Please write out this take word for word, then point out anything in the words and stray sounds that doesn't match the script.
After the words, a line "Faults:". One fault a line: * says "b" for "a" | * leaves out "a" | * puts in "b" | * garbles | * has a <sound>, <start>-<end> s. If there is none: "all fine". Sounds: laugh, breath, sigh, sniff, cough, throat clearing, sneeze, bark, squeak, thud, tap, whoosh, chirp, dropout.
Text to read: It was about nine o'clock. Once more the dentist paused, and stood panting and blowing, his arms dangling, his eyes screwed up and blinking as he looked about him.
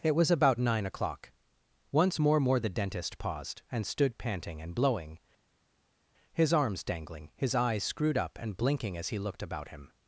It was about nine o'clock. Once more more the dentist paused, and stood panting and blowing, his arms dangling, his eyes screwed up and blinking as he looked about him.
Faults:
* puts in "more"